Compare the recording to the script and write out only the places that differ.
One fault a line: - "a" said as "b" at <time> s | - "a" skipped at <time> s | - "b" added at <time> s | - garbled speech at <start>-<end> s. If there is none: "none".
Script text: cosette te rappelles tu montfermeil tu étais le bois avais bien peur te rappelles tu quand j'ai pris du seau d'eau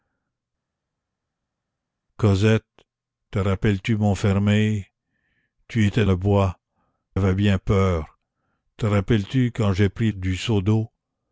none